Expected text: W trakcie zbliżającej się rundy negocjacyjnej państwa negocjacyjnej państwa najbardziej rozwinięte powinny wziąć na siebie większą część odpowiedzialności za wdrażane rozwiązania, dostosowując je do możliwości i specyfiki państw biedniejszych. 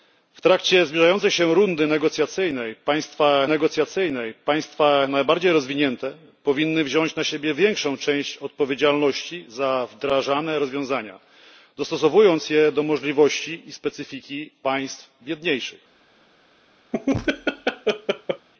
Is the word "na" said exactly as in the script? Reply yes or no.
yes